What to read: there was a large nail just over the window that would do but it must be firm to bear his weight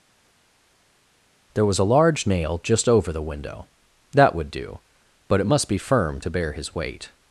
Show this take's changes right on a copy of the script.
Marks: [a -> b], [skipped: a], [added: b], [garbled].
there was a large nail just over the window that would do but it must be firm to bear his weight